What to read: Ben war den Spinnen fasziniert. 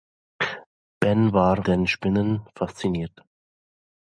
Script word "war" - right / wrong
right